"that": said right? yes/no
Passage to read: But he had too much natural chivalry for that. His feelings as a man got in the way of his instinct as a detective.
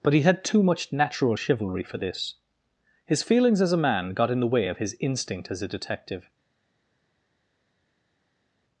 no